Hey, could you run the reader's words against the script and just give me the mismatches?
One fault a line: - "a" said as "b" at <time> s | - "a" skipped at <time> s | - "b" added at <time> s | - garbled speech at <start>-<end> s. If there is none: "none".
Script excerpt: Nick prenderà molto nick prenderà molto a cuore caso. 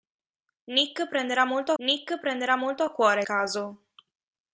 none